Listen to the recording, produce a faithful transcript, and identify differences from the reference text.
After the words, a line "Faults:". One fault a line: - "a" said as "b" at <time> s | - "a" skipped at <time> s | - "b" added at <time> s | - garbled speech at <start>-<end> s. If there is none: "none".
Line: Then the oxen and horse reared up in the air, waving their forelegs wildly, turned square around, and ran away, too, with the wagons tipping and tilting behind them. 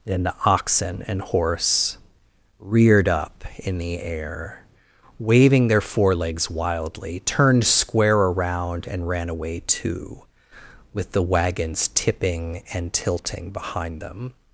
Then the oxen and horse reared up in the air, waving their forelegs wildly, turned square around, and ran away, too, with the wagons tipping and tilting behind them.
Faults:
none